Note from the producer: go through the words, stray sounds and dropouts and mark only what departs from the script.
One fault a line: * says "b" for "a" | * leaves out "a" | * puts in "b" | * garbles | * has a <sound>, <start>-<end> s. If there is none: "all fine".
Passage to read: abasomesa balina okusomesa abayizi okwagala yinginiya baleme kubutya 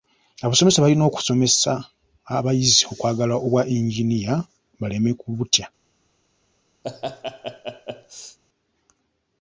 * puts in "obwa"
* has a laugh, 6.8-8.4 s